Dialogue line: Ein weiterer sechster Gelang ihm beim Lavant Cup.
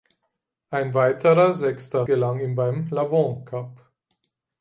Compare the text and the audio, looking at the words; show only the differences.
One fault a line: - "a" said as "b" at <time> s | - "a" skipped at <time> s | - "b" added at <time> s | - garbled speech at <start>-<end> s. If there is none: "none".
none